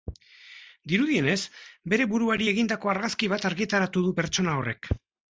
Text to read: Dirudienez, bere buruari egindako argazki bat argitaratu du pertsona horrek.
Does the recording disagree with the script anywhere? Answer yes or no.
no